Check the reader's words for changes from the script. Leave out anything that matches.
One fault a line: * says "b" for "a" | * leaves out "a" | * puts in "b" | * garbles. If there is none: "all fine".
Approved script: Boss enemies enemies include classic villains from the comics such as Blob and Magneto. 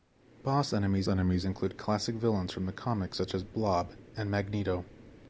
all fine